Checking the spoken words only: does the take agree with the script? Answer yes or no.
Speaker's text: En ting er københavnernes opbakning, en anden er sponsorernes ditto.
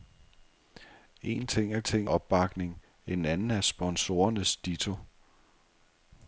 no